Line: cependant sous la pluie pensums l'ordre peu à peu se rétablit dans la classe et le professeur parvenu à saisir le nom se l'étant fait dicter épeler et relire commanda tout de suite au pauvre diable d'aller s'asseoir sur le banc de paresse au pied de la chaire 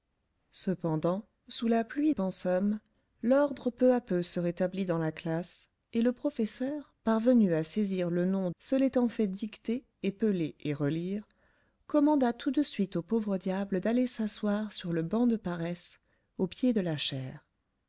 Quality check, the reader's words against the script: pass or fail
pass